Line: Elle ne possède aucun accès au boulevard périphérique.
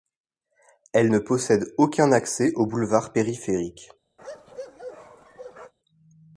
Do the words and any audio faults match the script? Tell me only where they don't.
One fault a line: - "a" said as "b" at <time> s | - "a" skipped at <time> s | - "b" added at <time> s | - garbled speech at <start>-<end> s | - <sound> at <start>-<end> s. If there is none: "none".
- bark at 4.2-5.7 s